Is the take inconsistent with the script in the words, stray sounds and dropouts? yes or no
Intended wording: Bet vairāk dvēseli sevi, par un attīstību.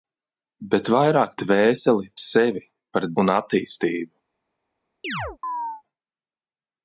yes